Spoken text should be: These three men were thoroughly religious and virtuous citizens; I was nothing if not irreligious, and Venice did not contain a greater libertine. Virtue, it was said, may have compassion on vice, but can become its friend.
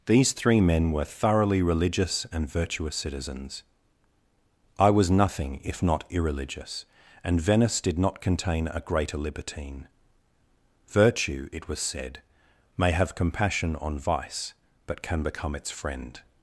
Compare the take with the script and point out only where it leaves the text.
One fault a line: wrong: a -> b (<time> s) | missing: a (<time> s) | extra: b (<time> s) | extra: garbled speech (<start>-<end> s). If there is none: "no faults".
no faults